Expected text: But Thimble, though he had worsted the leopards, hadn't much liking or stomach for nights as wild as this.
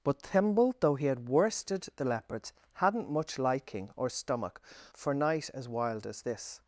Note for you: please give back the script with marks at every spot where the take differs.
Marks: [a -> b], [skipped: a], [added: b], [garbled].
But Thimble, though he had worsted the leopards, hadn't much liking or stomach for [nights -> night] as wild as this.